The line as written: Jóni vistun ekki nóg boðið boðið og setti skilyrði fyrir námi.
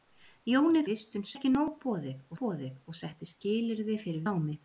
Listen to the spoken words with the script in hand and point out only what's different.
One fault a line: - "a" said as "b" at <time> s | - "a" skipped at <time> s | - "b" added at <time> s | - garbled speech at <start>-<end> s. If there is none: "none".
none